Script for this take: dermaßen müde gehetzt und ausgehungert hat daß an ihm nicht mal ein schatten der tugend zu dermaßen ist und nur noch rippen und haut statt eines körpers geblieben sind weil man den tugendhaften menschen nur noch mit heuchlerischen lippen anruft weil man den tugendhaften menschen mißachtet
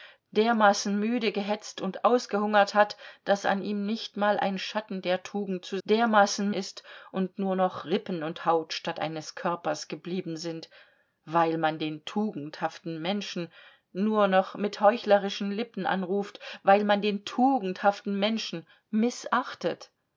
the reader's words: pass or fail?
pass